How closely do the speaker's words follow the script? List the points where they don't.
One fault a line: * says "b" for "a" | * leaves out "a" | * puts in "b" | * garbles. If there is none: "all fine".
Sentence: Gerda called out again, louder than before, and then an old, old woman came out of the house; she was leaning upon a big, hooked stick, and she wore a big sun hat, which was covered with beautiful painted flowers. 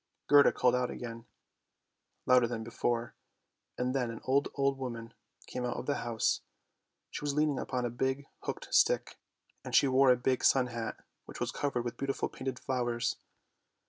all fine